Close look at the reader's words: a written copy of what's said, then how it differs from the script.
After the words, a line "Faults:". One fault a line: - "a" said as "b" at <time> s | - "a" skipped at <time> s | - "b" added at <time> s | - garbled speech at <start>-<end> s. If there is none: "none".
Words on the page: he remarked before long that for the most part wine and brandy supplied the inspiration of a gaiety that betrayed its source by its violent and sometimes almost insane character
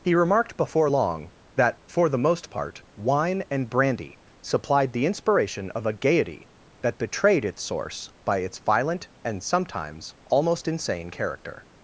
he remarked before long that for the most part wine and brandy supplied the inspiration of a gaiety that betrayed its source by its violent and sometimes almost insane character
Faults:
none